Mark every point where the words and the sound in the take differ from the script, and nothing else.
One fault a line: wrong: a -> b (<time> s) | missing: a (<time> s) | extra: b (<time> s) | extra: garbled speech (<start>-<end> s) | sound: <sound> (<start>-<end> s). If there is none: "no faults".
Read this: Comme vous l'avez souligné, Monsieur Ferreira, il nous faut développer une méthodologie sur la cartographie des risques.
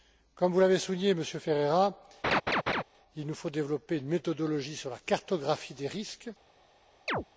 sound: laugh (2.2-2.8 s)
sound: chirp (7.1-7.2 s)